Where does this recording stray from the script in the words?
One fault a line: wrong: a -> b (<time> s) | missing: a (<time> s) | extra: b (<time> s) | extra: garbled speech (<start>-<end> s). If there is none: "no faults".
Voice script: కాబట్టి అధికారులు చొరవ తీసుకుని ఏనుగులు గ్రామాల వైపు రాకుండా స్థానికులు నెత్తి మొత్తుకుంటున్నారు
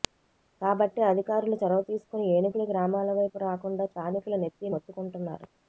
no faults